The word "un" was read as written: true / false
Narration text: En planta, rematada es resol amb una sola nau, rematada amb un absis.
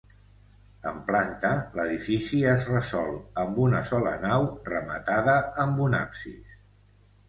true